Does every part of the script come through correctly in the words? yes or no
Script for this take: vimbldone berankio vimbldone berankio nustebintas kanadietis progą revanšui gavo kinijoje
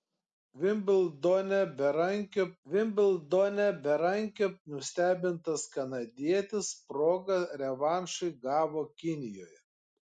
yes